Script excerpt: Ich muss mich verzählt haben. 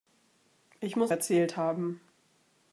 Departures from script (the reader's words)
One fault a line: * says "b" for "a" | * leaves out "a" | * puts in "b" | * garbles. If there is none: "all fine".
* leaves out "mich"